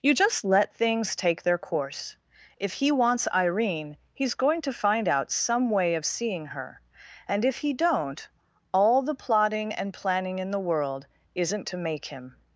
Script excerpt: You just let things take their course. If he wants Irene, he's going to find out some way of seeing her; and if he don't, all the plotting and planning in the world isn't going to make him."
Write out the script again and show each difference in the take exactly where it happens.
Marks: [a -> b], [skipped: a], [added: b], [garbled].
You just let things take their course. If he wants Irene, he's going to find out some way of seeing her; and if he don't, all the plotting and planning in the world isn't [skipped: going] to make him."